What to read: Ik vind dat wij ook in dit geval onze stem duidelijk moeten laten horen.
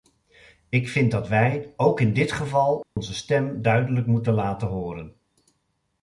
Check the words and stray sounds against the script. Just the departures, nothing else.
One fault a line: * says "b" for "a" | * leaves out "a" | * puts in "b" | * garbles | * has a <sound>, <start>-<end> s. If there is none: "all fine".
* has a dropout, 2.8-3.0 s